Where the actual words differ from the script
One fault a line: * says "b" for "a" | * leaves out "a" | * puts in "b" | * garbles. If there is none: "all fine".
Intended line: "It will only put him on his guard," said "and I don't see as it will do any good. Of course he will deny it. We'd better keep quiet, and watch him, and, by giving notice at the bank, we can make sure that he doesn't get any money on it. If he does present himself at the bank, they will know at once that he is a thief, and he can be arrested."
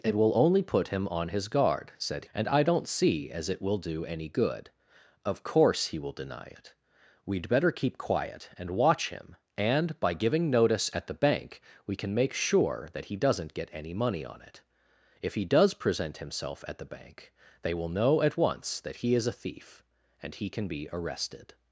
all fine